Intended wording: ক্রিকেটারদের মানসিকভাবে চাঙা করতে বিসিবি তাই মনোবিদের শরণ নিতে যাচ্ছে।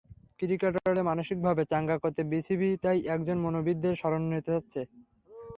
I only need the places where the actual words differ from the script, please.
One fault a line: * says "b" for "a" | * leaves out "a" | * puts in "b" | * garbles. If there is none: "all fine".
* puts in "একজন"